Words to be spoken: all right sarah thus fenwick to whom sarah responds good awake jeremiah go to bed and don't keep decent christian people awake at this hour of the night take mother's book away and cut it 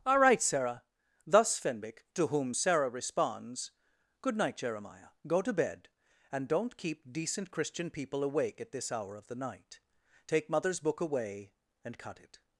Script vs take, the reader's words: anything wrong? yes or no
yes